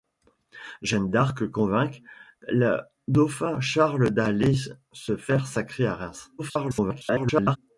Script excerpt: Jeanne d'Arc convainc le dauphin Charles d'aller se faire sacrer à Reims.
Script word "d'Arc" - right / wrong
right